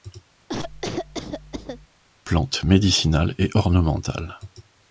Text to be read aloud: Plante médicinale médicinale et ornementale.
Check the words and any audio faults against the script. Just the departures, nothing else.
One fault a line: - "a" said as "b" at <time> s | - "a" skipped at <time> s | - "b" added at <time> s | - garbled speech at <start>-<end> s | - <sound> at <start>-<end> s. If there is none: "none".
- cough at 0.5-1.9 s
- "médicinale" skipped at 3.3 s